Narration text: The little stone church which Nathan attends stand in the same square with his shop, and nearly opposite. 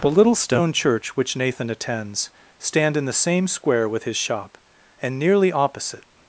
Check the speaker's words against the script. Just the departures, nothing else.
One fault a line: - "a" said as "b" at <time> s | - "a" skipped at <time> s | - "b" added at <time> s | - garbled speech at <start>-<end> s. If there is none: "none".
none